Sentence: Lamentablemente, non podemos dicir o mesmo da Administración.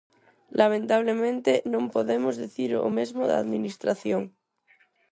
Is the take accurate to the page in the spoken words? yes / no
yes